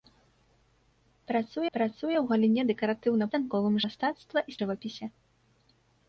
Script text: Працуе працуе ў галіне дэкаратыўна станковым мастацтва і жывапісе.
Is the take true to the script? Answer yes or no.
yes